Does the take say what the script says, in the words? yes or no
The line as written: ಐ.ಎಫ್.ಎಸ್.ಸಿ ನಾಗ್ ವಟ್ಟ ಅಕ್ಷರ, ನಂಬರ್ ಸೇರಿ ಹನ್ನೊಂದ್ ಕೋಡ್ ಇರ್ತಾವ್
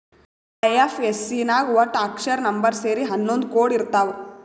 yes